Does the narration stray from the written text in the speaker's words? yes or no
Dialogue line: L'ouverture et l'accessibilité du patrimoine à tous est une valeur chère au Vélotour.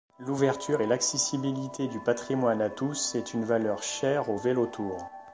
no